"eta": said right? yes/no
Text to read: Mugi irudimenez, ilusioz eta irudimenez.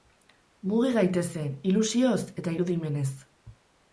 yes